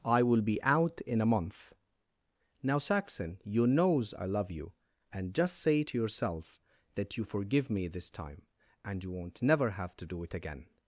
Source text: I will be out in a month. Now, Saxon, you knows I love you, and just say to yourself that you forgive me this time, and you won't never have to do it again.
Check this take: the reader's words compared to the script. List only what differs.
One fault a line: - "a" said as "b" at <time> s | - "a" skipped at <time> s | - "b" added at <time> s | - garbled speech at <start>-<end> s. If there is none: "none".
none